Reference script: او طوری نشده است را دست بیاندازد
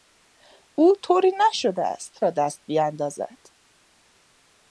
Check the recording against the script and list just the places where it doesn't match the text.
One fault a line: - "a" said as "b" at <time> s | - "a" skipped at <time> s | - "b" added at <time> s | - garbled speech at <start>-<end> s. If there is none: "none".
none